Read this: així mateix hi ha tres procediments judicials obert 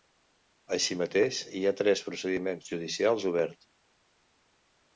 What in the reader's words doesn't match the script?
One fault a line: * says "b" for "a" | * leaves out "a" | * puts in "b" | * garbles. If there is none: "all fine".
all fine